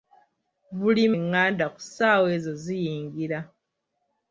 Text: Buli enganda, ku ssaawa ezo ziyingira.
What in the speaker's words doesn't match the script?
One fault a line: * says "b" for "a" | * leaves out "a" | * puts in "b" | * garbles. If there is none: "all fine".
all fine